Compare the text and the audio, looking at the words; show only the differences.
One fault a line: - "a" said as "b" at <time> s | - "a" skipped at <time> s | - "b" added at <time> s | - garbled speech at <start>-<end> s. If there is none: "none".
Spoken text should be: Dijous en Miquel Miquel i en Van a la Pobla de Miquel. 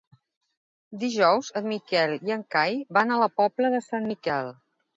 - "Miquel" skipped at 2.1 s
- "Cai" added at 2.6 s
- "Sant" added at 3.9 s